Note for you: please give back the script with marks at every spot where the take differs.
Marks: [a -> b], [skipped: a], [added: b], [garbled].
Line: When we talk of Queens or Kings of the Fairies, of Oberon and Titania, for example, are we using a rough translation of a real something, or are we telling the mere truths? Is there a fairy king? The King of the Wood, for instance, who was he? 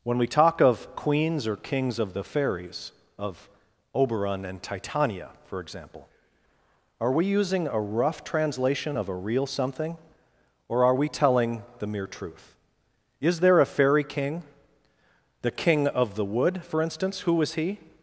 When we talk of Queens or Kings of the Fairies, of Oberon and Titania, for example, are we using a rough translation of a real something, or are we telling the mere [truths? -> truth] Is there a fairy king? The King of the Wood, for instance, who was he?